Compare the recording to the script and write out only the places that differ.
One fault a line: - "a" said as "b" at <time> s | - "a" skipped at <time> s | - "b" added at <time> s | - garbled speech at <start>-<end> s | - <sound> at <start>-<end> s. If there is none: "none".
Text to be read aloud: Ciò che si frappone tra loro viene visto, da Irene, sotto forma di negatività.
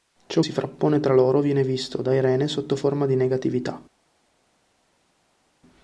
- "che" skipped at 0.4 s